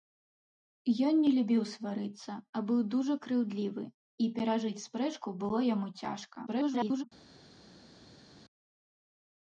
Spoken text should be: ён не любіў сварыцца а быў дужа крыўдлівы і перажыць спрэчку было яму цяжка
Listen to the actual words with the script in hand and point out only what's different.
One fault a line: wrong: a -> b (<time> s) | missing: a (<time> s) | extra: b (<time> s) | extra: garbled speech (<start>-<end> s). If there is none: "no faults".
extra: garbled speech (6.5-7.0 s)